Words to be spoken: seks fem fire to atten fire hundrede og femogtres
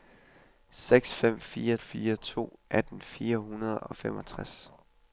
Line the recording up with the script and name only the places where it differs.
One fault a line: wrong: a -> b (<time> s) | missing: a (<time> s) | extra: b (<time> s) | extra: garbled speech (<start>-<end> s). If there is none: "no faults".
extra: fire (1.8 s)